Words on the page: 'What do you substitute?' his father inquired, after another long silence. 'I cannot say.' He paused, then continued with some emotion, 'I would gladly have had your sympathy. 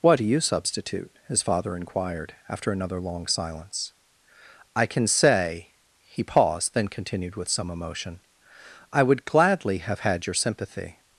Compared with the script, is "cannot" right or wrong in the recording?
wrong